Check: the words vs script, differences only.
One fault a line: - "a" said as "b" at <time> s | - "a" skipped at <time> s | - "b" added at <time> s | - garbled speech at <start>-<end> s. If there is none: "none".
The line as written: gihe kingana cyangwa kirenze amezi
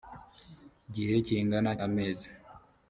- "cyangwa kirenze" skipped at 1.7 s